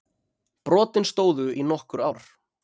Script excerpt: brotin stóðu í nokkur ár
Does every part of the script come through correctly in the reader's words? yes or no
yes